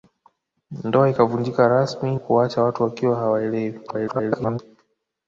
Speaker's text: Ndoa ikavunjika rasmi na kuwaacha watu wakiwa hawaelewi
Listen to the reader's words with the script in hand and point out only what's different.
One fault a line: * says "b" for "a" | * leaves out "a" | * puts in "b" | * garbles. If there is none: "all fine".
* leaves out "na"
* garbles